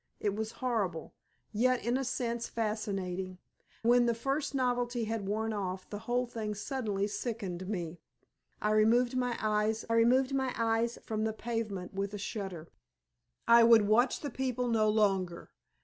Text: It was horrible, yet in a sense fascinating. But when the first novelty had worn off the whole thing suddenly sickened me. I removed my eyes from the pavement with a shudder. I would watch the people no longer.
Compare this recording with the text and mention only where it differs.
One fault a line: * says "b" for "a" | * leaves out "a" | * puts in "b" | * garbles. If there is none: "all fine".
* leaves out "But"
* puts in "removed my eyes"